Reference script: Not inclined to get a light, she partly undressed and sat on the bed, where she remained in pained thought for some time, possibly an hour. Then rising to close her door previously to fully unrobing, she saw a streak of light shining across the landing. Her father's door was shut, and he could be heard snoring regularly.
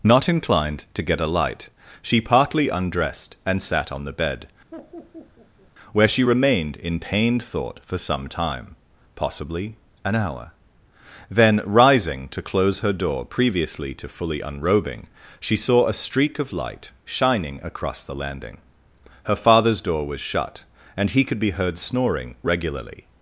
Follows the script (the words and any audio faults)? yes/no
no